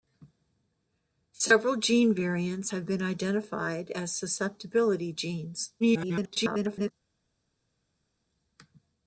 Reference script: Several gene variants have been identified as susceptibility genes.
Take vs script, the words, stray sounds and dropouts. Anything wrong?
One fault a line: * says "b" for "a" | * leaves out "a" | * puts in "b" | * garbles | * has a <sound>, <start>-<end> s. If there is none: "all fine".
* garbles